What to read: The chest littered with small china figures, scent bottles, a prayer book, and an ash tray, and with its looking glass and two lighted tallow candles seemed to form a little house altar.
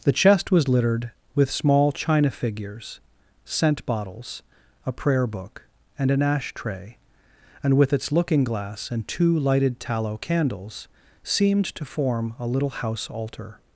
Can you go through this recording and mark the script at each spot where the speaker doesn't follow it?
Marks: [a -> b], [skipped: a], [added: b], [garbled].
The chest [added: was] littered with small china figures, scent bottles, a prayer book, and an ash tray, and with its looking glass and two lighted tallow candles seemed to form a little house altar.